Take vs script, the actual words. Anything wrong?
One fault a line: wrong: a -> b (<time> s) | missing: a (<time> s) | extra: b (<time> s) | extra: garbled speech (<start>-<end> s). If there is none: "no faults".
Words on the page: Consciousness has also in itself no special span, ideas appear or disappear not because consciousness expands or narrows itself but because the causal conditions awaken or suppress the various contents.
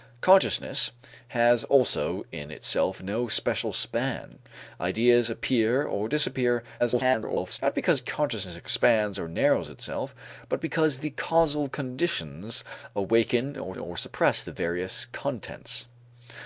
extra: garbled speech (6.8-7.6 s)
extra: or (13.8 s)